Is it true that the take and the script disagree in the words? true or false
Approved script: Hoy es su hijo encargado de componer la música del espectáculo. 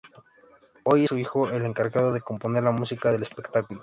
true